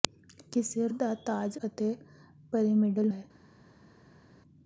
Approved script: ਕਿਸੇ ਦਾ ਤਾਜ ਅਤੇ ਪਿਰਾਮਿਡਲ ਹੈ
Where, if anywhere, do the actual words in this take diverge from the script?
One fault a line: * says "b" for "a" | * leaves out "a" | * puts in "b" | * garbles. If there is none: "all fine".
all fine